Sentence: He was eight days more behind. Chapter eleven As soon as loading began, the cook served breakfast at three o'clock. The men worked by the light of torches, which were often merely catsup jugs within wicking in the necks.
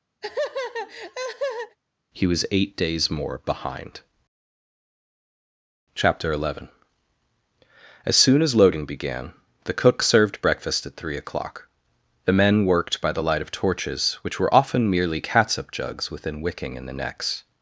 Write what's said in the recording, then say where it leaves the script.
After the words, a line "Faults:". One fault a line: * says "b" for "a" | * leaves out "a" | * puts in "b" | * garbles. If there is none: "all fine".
He was eight days more behind. Chapter eleven As soon as loading began, the cook served breakfast at three o'clock. The men worked by the light of torches, which were often merely catsup jugs within wicking in the necks.
Faults:
all fine